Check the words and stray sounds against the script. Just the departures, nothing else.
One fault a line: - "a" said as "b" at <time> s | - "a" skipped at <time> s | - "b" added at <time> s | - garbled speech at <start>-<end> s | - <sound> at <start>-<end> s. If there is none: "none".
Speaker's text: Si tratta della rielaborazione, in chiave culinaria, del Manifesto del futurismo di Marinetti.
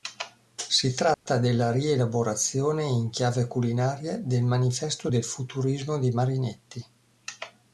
- dropout at 1.1-1.3 s